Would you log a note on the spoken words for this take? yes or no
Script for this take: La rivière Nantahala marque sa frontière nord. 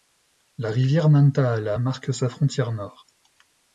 no